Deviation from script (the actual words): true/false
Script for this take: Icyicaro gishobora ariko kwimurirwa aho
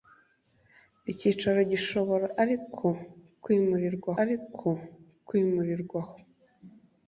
true